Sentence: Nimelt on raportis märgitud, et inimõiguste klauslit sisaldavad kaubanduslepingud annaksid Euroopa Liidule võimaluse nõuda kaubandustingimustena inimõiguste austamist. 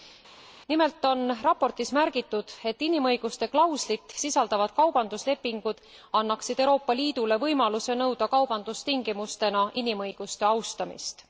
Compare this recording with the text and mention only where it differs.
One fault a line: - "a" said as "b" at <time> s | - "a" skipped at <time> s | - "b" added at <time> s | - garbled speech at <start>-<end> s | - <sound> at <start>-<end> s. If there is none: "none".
none